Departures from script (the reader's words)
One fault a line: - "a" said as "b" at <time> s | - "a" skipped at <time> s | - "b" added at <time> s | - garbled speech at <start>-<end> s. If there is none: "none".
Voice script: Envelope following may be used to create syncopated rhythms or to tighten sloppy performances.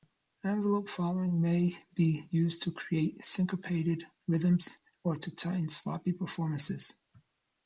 none